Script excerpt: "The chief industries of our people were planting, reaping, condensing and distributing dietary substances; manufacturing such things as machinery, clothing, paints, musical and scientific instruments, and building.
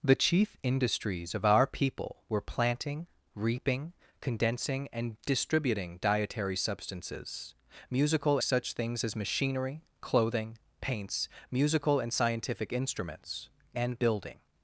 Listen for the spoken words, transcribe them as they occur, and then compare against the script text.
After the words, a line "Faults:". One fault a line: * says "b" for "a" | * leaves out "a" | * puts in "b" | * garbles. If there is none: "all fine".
"The chief industries of our people were planting, reaping, condensing and distributing dietary substances; musical such things as machinery, clothing, paints, musical and scientific instruments, and building.
Faults:
* says "musical" for "manufacturing"